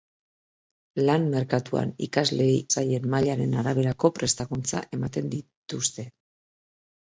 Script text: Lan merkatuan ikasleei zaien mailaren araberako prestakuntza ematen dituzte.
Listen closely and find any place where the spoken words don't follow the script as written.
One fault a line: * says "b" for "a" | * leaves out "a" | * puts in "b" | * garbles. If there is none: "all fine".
all fine